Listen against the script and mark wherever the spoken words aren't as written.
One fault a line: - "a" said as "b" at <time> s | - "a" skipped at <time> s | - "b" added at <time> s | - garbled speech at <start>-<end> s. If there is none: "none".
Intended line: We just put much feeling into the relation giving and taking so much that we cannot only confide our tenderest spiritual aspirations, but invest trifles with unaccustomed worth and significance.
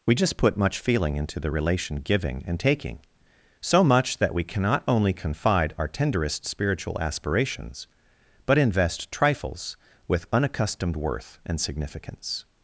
none